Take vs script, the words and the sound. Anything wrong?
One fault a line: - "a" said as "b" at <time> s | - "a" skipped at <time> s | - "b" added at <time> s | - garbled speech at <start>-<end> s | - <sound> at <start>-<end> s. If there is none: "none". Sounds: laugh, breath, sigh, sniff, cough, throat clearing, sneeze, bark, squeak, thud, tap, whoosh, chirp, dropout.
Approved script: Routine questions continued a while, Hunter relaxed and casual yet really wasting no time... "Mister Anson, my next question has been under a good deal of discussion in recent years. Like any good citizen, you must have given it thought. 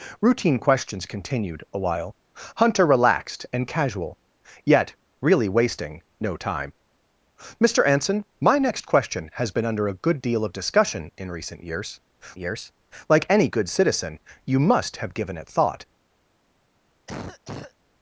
- "years" added at 12.4 s
- cough at 17.1-17.7 s